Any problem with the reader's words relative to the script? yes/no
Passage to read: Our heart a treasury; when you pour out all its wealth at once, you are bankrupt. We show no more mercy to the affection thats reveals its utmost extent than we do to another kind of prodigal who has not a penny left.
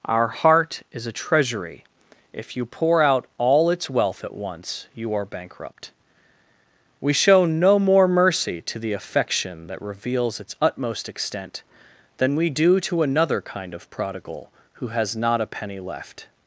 yes